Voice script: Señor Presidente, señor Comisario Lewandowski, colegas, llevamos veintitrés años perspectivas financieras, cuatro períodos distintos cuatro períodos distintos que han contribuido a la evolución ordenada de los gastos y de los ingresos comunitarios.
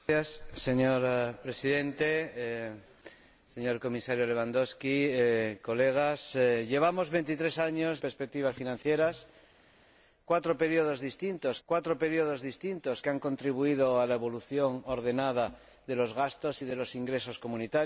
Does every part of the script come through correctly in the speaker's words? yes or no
yes